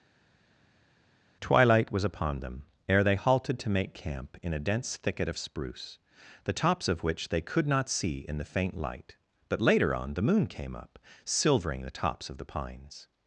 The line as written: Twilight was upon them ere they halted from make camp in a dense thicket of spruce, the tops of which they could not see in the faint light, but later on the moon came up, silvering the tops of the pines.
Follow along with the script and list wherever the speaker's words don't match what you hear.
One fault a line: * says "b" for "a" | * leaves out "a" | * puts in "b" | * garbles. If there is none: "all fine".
* says "to" for "from"